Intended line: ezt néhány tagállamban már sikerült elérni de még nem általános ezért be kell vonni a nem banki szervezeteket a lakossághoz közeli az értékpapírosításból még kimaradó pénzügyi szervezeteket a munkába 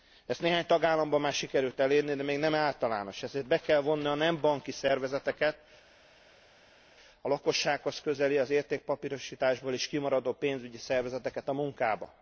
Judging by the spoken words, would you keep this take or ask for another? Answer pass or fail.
fail